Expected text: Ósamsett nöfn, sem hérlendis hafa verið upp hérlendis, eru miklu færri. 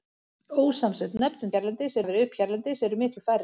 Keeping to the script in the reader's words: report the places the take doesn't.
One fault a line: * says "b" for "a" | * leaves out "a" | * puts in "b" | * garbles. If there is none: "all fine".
all fine